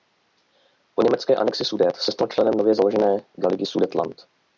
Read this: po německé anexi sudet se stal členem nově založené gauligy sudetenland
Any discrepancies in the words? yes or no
no